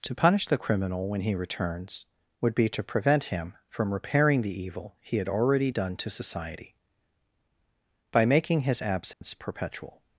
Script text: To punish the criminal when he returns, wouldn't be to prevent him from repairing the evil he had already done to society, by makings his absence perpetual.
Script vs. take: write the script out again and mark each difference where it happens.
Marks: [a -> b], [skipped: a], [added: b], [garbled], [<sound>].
To punish the criminal when he returns, [wouldn't -> would] be to prevent him from repairing the evil he had already done to society, by [makings -> making] his absence [dropout] perpetual.